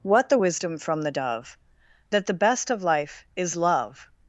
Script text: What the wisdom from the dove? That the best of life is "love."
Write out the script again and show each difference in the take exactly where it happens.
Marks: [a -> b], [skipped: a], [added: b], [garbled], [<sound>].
What the wisdom from the dove? That the best of life is "love."